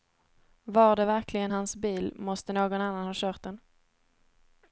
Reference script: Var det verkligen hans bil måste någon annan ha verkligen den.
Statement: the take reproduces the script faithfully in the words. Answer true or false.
false